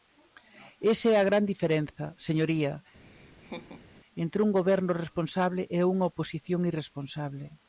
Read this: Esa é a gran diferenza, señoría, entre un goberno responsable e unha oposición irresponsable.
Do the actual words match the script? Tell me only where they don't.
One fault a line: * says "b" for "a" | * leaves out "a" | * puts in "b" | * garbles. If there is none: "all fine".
all fine